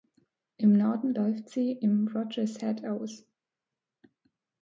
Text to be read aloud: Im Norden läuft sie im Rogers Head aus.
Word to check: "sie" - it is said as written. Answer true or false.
true